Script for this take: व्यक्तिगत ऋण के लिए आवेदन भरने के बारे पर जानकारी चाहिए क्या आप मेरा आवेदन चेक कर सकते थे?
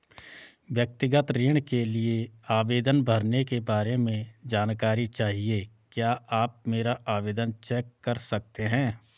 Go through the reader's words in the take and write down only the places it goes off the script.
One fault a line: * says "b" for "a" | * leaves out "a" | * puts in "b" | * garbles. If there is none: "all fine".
* says "में" for "पर"
* says "हैं" for "थे"